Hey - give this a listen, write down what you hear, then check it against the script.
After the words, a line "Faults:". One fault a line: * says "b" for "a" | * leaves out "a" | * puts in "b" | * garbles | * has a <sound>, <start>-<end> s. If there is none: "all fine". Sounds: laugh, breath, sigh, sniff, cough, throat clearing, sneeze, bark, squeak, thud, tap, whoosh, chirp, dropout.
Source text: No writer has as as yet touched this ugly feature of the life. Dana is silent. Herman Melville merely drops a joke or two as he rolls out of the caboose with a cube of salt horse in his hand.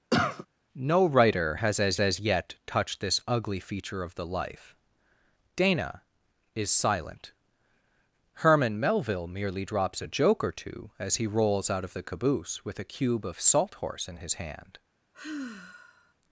No writer has as as yet touched this ugly feature of the life. Dana is silent. Herman Melville merely drops a joke or two as he rolls out of the caboose with a cube of salt horse in his hand.
Faults:
* has a cough, 0.1-0.5 s
* has a sigh, 15.1-16.1 s